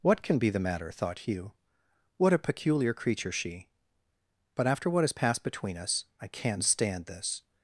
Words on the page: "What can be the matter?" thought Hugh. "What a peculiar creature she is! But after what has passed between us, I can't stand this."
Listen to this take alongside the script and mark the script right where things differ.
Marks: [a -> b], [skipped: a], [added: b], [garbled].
"What can be the matter?" thought Hugh. "What a peculiar creature she [skipped: is!] But after what has passed between us, I can't stand this."